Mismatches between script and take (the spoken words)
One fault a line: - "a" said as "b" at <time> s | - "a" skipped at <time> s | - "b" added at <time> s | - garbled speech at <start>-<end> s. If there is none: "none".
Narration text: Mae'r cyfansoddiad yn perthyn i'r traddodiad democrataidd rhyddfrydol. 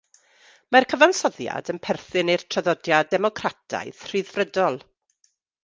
none